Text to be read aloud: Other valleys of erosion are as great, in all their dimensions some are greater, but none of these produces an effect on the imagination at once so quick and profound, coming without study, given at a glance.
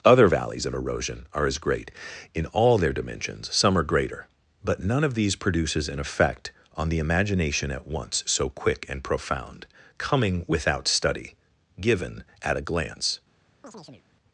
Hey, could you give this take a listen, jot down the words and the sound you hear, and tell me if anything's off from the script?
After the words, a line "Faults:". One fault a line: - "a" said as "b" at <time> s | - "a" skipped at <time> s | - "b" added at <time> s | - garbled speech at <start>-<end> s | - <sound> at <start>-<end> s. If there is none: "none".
Other valleys of erosion are as great, in all their dimensions some are greater, but none of these produces an effect on the imagination at once so quick and profound, coming without study, given at a glance.
Faults:
- chirp at 13.6-14.1 s